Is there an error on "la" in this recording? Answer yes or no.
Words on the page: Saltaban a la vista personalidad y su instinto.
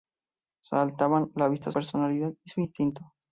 no